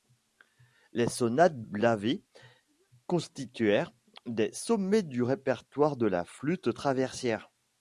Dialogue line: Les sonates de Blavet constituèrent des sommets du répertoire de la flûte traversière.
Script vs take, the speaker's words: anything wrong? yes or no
yes